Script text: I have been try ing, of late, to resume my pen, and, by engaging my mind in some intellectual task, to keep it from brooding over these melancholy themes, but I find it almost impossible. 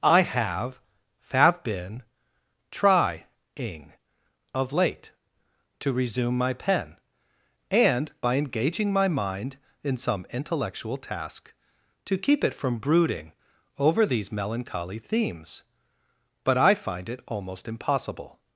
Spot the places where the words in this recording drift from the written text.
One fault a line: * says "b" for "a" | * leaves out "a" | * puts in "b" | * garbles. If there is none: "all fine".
* puts in "have"